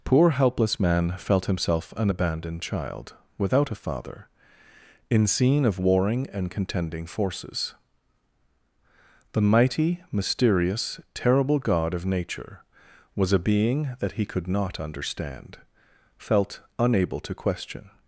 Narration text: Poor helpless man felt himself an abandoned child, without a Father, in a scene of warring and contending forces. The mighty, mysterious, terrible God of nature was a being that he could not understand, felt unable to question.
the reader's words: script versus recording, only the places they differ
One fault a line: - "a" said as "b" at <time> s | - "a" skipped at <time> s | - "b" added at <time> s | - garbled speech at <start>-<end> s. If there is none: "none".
- "a" skipped at 5.3 s